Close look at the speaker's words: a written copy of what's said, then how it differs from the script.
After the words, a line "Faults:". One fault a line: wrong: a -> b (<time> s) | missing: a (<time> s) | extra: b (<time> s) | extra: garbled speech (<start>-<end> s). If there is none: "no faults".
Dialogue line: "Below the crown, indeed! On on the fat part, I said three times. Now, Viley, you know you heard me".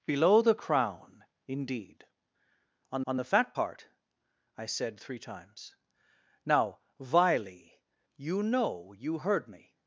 "Below the crown, indeed! On on the fat part, I said three times. Now, Viley, you know you heard me".
Faults:
no faults